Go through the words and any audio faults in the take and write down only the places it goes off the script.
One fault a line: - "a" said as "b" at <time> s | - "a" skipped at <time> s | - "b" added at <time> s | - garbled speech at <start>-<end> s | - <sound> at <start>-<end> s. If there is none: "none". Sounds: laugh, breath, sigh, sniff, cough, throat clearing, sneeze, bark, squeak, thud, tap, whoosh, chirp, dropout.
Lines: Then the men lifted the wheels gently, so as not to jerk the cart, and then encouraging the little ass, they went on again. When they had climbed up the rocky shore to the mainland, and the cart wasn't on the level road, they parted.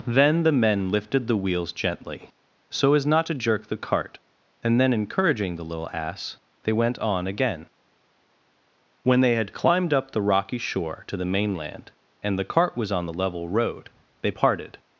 - "wasn't" said as "was" at 12.8 s